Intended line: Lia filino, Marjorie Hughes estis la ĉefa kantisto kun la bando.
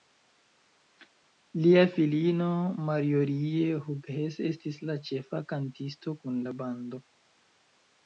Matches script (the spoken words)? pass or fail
pass